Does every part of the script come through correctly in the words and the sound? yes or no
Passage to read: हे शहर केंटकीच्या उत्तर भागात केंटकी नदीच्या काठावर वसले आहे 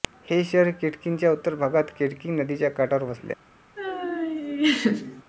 no